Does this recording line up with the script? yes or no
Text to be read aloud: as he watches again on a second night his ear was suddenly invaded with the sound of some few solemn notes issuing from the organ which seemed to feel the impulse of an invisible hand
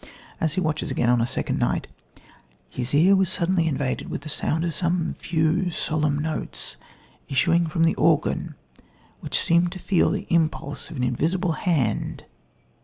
yes